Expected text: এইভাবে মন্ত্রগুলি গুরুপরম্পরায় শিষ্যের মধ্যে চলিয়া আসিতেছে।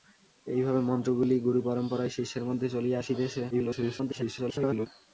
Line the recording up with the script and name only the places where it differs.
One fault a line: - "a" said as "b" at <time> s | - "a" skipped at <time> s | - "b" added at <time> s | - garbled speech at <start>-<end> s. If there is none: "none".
- garbled speech at 3.5-4.9 s